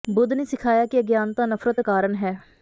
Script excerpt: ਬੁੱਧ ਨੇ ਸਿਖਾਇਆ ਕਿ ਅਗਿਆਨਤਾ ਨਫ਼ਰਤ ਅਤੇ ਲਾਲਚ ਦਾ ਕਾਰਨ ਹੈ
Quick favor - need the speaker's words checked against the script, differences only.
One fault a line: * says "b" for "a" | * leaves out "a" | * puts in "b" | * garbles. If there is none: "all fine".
* leaves out "ਅਤੇ ਲਾਲਚ ਦਾ"